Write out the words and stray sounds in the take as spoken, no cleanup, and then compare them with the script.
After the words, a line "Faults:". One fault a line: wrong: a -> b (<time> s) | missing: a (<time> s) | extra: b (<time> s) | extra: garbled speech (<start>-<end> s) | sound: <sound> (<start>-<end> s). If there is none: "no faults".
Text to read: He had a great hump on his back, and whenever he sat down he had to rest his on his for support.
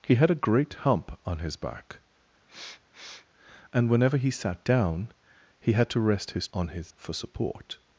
He had a great hump on his back, and whenever he sat down he had to rest his on his for support.
Faults:
sound: sniff (2.5-3.3 s)